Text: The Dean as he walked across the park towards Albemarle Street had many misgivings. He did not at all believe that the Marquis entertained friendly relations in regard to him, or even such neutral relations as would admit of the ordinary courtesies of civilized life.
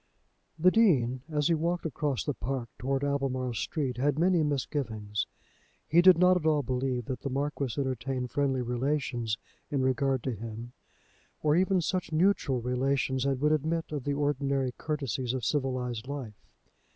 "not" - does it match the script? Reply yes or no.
yes